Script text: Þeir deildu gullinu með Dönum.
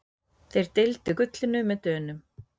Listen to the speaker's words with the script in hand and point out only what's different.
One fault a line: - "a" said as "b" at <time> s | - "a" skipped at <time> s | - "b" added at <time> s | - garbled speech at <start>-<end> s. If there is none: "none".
none